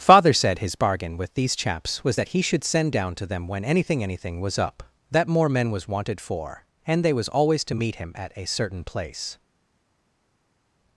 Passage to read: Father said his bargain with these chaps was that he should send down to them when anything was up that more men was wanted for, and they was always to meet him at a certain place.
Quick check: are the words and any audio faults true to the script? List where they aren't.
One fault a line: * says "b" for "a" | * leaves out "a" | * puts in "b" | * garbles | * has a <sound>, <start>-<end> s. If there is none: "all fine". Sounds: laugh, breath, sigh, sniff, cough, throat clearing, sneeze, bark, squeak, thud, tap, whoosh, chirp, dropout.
* puts in "anything"